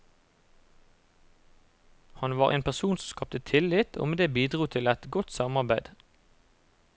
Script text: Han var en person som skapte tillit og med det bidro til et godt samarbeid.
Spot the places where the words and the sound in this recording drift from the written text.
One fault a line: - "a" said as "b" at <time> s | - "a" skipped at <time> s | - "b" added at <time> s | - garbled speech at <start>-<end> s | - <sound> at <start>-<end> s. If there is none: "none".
none